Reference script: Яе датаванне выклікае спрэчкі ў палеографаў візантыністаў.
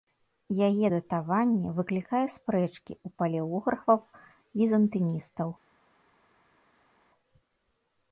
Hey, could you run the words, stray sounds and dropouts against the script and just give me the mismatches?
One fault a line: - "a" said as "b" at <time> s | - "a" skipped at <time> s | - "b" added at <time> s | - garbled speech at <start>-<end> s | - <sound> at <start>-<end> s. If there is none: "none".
none